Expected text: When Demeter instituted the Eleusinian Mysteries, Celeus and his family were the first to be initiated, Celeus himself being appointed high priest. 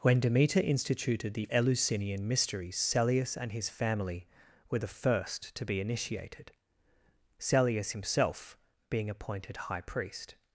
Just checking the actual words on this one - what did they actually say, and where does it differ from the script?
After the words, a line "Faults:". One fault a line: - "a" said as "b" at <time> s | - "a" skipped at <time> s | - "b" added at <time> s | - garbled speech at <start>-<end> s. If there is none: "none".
When Demeter instituted the Eleusinian Mysteries, Celeus and his family were the first to be initiated, Celeus himself being appointed high priest.
Faults:
none